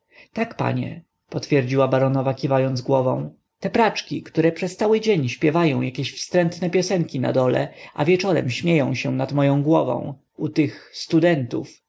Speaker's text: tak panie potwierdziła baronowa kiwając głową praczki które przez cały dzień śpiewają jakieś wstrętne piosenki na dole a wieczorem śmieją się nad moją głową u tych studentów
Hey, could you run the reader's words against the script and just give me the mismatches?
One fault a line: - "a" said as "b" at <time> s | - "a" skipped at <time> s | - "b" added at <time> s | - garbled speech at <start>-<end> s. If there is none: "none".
- "te" added at 3.6 s